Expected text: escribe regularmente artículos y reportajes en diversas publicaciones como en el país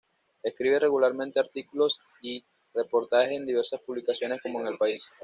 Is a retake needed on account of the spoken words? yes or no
no